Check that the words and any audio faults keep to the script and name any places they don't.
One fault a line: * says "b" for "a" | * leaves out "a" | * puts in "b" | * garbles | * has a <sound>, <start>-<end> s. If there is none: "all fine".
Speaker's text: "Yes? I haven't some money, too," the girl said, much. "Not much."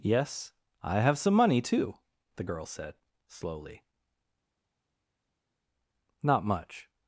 * says "have" for "haven't"
* says "slowly" for "much"